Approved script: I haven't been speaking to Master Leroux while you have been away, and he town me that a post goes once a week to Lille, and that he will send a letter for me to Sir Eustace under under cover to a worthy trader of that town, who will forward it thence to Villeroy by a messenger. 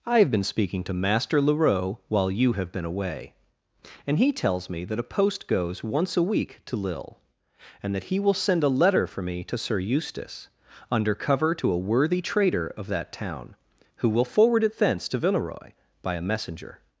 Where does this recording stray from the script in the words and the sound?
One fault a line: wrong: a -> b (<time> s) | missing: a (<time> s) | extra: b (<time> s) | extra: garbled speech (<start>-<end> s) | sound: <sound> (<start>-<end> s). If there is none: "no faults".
wrong: haven't -> have (0.2 s)
wrong: town -> tells (4.3 s)
missing: under (11.1 s)